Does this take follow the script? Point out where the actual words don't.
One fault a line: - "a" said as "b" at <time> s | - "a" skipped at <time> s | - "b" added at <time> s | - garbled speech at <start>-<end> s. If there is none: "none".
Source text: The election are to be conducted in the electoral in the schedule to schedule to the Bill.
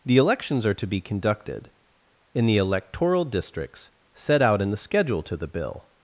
- "election" said as "elections" at 0.2 s
- "districts set out" added at 3.2 s
- "schedule to" skipped at 5.4 s